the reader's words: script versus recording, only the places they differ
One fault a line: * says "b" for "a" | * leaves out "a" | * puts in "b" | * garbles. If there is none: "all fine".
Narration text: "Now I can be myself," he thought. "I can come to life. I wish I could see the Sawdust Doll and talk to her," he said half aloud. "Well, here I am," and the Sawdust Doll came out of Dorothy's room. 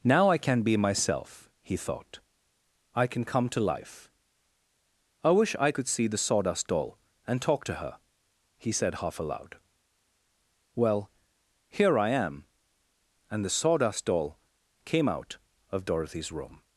all fine